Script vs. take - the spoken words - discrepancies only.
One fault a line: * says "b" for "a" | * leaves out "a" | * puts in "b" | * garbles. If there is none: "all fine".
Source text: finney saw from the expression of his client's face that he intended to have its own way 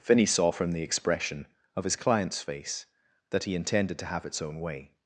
all fine